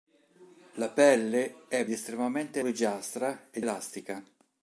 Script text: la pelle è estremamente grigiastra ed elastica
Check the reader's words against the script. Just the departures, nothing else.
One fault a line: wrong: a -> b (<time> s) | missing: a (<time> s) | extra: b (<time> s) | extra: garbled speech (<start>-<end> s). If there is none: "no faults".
no faults